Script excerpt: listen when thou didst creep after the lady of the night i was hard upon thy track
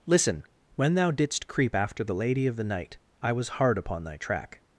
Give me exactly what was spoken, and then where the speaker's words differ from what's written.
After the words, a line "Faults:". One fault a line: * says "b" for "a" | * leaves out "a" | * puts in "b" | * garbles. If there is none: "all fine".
listen when thou didst creep after the lady of the night i was hard upon thy track
Faults:
all fine